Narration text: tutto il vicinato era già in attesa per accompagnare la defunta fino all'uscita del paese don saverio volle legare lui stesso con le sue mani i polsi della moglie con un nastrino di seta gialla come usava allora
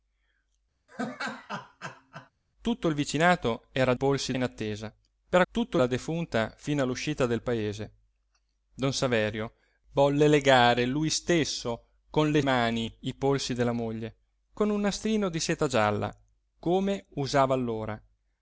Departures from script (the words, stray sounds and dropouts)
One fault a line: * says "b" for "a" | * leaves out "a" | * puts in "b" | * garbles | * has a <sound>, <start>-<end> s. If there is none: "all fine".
* has a laugh, 0.9-2.3 s
* says "polsi" for "già"
* says "tutto" for "accompagnare"
* leaves out "sue"